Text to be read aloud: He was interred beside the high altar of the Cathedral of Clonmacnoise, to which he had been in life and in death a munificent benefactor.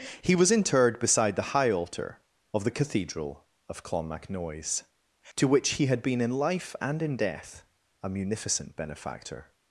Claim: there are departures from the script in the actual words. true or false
false